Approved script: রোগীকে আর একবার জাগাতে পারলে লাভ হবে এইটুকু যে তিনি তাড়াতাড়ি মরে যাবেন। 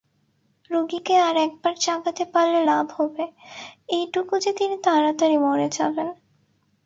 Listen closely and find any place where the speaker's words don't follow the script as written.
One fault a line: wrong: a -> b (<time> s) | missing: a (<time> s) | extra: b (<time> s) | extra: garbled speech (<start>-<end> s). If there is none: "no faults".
no faults